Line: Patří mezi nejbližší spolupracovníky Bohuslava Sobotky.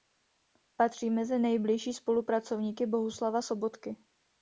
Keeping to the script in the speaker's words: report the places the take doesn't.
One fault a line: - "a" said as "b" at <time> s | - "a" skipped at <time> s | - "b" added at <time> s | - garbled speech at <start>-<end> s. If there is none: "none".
none